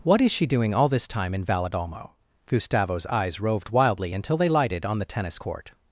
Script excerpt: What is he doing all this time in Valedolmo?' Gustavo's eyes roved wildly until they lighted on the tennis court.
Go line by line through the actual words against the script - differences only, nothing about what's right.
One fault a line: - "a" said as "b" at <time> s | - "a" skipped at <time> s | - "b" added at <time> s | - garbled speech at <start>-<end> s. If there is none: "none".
- "he" said as "she" at 0.3 s